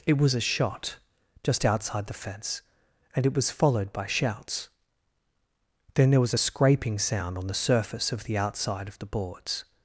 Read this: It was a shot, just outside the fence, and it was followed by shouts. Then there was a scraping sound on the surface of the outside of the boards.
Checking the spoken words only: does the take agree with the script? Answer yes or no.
yes